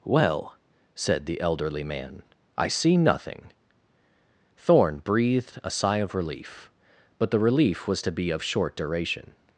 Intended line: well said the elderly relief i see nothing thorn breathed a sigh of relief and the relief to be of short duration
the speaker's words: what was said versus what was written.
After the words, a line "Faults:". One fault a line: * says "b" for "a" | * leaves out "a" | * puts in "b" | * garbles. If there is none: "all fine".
well said the elderly man i see nothing thorn breathed a sigh of relief but the relief was to be of short duration
Faults:
* says "man" for "relief"
* says "but" for "and"
* puts in "was"